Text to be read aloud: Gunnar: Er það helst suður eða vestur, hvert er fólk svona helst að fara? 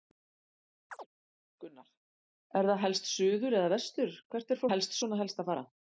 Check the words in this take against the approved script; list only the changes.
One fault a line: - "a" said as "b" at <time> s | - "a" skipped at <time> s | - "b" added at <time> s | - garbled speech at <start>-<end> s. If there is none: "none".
- "fólk" said as "helst" at 4.7 s